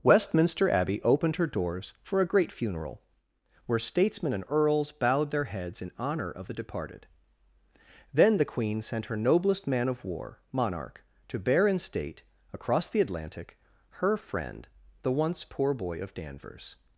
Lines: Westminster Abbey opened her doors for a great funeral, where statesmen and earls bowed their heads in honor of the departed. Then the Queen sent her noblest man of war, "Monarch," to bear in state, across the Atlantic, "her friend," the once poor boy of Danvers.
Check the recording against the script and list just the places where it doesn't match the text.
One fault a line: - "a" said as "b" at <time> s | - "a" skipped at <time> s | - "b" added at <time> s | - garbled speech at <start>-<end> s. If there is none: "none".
none